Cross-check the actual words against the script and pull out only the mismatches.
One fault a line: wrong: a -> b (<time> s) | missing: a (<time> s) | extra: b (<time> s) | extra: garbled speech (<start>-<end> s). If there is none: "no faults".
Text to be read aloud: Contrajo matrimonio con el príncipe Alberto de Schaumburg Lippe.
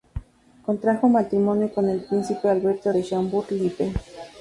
no faults